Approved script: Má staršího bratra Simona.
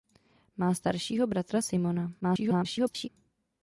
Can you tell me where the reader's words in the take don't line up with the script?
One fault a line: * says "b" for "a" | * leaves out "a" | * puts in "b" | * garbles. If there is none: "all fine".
* garbles